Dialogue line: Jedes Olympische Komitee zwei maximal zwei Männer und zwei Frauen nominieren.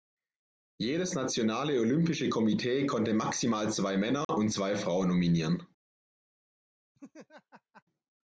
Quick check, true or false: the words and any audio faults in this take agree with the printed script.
false